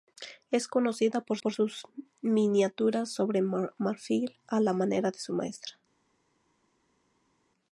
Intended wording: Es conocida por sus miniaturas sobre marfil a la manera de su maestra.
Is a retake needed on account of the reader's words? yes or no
yes